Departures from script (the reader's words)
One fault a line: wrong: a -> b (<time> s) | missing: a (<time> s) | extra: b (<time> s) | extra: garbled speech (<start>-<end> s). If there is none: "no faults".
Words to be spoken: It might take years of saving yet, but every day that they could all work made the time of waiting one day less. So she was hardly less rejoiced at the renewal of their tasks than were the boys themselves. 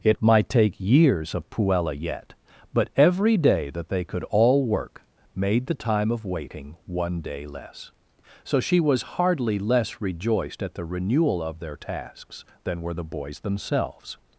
wrong: saving -> puella (1.5 s)